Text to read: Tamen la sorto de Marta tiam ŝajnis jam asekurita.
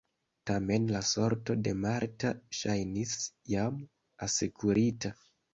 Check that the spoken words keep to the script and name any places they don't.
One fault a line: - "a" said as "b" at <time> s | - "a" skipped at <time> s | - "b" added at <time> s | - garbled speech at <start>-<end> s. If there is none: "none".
- "tiam" skipped at 2.3 s